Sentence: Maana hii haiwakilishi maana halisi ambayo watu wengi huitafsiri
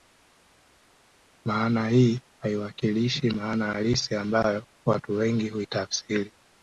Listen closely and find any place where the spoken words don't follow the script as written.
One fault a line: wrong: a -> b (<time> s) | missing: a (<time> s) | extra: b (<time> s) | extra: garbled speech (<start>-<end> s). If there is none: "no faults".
no faults